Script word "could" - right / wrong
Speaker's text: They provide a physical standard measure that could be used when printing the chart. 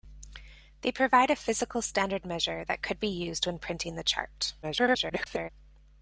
right